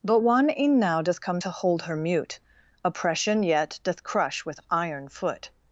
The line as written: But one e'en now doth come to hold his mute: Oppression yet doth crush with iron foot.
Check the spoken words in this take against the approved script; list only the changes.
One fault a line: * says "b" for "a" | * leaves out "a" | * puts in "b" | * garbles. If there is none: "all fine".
* says "her" for "his"